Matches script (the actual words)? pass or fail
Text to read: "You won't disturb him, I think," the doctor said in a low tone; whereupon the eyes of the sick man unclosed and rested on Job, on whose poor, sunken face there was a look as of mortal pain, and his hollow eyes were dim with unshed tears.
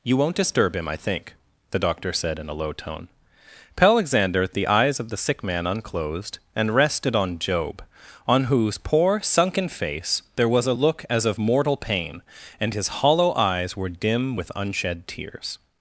fail